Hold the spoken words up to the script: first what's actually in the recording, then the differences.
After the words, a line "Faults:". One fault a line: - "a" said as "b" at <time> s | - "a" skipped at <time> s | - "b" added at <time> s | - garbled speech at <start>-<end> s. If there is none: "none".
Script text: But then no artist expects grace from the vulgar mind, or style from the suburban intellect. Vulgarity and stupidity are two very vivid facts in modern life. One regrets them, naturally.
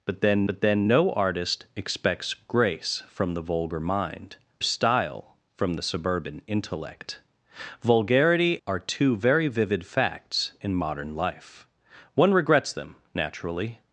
But then but then no artist expects grace from the vulgar mind, style from the suburban intellect. Vulgarity are two very vivid facts in modern life. One regrets them, naturally.
Faults:
- "but then" added at 0.5 s
- "or" skipped at 4.4 s
- "and stupidity" skipped at 8.6 s